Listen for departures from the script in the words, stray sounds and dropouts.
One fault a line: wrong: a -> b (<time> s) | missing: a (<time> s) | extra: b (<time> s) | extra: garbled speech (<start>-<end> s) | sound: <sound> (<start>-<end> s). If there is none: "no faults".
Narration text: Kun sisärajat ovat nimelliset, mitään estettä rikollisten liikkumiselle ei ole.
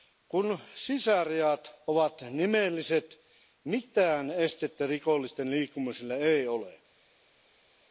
no faults